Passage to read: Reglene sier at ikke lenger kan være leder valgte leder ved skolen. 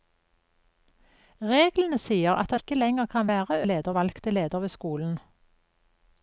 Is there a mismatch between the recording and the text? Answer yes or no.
no